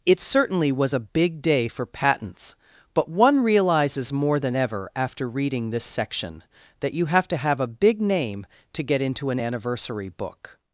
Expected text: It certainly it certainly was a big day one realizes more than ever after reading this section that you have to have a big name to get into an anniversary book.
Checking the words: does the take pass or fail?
fail